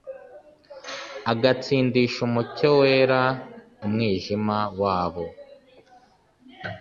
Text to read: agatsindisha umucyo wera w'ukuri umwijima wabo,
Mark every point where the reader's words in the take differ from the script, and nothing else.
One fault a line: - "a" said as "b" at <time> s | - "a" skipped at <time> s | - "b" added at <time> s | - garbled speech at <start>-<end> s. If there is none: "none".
- "w'ukuri" skipped at 3.2 s